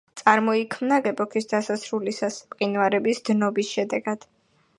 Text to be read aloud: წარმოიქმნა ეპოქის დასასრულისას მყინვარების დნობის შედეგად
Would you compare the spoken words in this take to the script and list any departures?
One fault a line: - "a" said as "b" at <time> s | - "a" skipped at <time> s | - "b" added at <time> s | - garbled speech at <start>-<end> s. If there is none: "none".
none